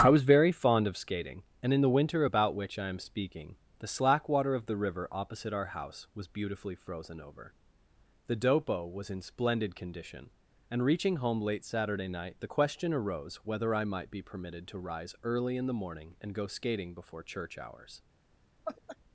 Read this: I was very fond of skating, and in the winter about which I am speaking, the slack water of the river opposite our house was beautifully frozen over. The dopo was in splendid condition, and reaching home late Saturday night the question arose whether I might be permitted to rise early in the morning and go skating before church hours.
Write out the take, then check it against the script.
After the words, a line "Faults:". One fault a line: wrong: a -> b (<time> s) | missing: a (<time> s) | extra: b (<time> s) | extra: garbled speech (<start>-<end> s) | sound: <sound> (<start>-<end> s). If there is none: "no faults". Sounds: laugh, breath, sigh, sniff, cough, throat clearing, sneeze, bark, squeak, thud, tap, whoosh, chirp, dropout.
I was very fond of skating, and in the winter about which I am speaking, the slack water of the river opposite our house was beautifully frozen over. The dopo was in splendid condition, and reaching home late Saturday night the question arose whether I might be permitted to rise early in the morning and go skating before church hours.
Faults:
sound: laugh (18.6-19.0 s)